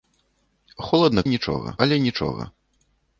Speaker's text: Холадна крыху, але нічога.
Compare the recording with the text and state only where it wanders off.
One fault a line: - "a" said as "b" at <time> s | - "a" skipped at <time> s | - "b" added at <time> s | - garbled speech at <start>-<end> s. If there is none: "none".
- "крыху" said as "нічога" at 1.3 s